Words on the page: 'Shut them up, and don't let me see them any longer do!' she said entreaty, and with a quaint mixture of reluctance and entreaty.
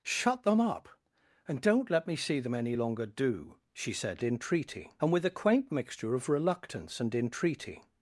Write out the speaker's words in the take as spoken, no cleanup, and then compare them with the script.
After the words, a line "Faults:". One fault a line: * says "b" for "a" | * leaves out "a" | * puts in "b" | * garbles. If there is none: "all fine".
'Shut them up, and don't let me see them any longer do!' she said entreaty, and with a quaint mixture of reluctance and entreaty.
Faults:
all fine